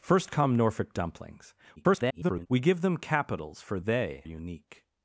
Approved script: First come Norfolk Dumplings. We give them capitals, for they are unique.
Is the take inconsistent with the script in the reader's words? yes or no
yes